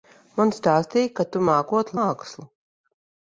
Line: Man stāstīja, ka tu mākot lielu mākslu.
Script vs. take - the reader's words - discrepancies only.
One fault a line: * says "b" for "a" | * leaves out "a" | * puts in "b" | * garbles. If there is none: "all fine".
* leaves out "lielu"